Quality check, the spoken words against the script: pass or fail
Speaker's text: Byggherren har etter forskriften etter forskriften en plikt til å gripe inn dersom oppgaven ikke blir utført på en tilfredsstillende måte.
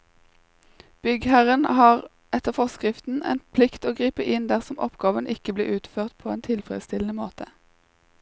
fail